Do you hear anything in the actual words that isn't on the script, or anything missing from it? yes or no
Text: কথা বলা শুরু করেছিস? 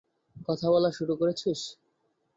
no